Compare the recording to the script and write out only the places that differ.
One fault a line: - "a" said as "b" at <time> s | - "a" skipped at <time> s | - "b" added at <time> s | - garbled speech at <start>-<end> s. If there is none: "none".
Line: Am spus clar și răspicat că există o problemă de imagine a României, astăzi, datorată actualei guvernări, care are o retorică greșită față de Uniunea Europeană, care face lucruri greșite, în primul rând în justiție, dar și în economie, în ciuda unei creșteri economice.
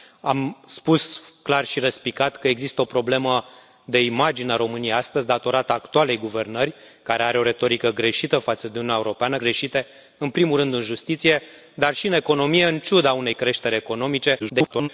- "care face lucruri" skipped at 9.4 s
- garbled speech at 14.4-14.9 s